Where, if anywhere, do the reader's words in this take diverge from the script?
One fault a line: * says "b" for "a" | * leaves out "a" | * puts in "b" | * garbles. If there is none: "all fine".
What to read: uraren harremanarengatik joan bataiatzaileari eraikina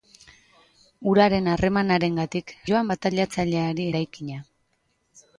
all fine